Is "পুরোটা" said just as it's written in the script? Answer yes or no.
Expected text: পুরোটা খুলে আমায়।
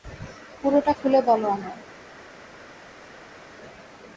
yes